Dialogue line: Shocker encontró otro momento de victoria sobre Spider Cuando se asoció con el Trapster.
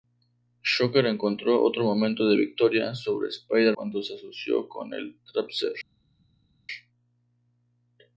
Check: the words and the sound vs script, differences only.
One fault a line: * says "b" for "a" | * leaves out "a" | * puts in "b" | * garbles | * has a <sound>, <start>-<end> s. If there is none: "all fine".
all fine